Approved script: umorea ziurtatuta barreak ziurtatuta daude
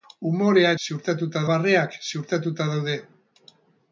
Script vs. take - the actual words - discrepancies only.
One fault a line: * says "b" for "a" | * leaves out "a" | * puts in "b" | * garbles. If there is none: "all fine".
all fine